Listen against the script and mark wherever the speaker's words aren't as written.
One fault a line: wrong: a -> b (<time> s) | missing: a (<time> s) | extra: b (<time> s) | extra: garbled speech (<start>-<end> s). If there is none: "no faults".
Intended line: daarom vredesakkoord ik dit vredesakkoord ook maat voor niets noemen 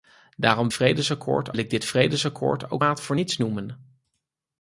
no faults